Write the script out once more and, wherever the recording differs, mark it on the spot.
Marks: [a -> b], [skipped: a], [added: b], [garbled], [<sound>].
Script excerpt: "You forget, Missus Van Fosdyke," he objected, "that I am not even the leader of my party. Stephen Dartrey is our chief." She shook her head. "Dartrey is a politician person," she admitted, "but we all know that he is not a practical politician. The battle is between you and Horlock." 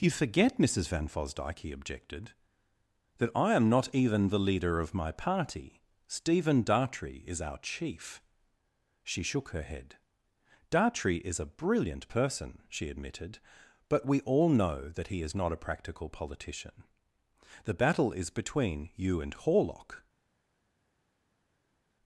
"You forget, Missus Van Fosdyke," he objected, "that I am not even the leader of my party. Stephen Dartrey is our chief." She shook her head. "Dartrey is a [politician -> brilliant] person," she admitted, "but we all know that he is not a practical politician. The battle is between you and Horlock."